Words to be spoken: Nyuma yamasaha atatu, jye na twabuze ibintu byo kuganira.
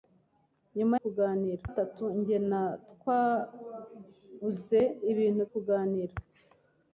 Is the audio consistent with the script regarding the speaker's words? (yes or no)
no